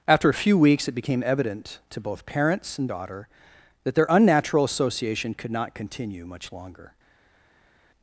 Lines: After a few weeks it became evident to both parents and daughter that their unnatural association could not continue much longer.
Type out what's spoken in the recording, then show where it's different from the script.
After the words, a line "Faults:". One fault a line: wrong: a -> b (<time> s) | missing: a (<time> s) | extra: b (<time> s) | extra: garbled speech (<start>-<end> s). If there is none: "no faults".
After a few weeks it became evident to both parents and daughter that their unnatural association could not continue much longer.
Faults:
no faults